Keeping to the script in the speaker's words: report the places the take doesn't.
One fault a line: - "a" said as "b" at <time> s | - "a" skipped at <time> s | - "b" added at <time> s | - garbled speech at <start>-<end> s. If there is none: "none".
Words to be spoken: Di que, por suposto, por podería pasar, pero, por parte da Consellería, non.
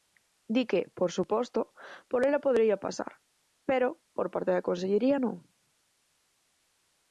- "ela" added at 2.3 s